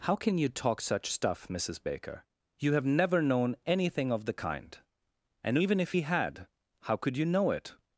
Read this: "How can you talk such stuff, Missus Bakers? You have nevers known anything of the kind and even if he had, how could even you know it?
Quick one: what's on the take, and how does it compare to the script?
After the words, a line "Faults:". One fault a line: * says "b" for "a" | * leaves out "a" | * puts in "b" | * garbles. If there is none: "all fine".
"How can you talk such stuff, Missus Baker? You have never known anything of the kind and even if he had, how could you know it?
Faults:
* says "Baker" for "Bakers"
* says "never" for "nevers"
* leaves out "even"